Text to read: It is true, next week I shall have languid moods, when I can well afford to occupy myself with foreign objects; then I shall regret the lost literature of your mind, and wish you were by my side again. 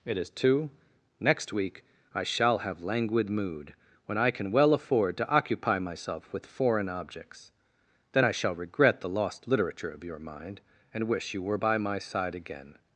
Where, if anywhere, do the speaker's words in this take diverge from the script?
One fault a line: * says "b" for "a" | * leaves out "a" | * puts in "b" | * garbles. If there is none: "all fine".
* says "two" for "true"
* says "mood" for "moods"